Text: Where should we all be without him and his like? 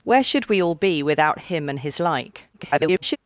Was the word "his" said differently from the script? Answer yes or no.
no